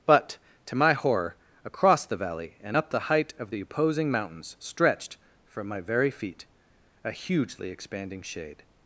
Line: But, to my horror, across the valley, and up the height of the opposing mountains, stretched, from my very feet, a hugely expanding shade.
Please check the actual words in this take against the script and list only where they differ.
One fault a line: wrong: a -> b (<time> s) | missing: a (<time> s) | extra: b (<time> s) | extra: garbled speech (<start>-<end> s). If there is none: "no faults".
no faults